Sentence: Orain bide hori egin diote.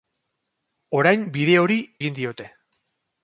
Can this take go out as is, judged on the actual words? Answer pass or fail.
pass